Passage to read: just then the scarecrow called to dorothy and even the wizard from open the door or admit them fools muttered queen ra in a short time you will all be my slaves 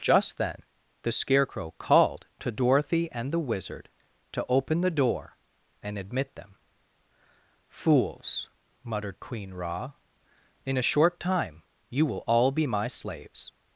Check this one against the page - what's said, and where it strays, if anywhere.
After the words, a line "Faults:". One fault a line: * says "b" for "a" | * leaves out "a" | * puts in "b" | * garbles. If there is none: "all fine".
just then the scarecrow called to dorothy and the wizard to open the door and admit them fools muttered queen ra in a short time you will all be my slaves
Faults:
* leaves out "even"
* says "to" for "from"
* says "and" for "or"